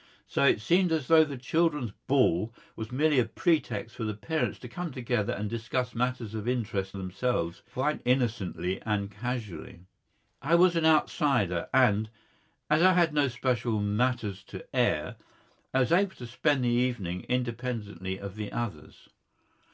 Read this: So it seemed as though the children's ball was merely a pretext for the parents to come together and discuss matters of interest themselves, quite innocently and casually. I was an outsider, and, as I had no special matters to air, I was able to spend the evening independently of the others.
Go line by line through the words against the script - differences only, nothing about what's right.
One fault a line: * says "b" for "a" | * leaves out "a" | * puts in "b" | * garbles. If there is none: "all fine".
all fine